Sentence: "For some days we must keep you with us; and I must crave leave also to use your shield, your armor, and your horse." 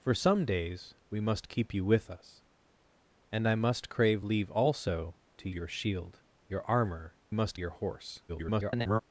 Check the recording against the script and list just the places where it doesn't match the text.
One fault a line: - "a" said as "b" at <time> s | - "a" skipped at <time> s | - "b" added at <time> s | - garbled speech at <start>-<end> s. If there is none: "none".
- "use" skipped at 5.5 s
- "and" said as "must" at 7.3 s
- garbled speech at 8.3-9.0 s